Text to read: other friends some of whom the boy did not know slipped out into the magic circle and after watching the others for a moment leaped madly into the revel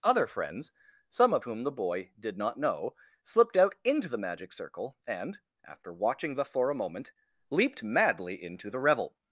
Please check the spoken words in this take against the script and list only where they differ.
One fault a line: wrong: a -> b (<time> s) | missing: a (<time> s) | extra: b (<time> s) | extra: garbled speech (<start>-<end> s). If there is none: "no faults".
missing: others (6.5 s)